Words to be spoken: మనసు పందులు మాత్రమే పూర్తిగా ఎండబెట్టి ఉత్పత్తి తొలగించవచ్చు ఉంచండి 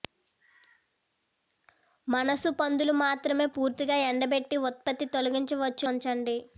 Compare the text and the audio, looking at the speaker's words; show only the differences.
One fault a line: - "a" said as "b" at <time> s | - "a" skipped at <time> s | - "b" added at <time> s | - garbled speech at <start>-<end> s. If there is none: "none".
none